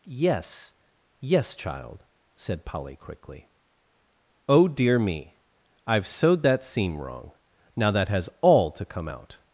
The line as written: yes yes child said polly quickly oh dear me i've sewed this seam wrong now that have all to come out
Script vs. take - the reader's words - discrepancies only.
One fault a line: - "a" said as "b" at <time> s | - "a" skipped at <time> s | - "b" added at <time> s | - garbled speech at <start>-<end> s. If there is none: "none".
- "this" said as "that" at 6.4 s
- "have" said as "has" at 8.1 s